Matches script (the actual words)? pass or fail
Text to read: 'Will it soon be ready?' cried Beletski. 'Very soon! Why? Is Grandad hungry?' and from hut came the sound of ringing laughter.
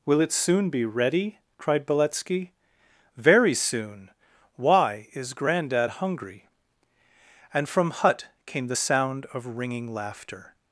pass